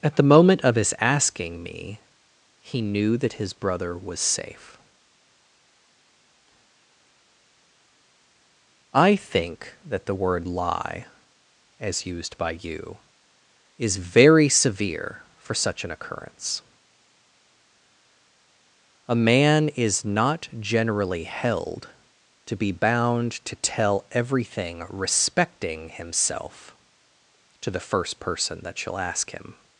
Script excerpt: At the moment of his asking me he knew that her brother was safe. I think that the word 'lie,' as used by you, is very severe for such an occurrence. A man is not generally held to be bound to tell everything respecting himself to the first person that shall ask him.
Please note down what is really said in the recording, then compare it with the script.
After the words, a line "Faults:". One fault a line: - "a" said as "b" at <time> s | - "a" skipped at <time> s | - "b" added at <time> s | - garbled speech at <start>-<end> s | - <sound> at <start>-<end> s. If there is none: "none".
At the moment of his asking me he knew that his brother was safe. I think that the word 'lie,' as used by you, is very severe for such an occurrence. A man is not generally held to be bound to tell everything respecting himself to the first person that shall ask him.
Faults:
- "her" said as "his" at 3.3 s